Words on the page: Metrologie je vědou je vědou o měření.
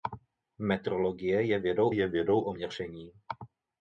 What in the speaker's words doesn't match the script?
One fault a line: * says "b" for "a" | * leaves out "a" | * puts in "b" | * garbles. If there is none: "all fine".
all fine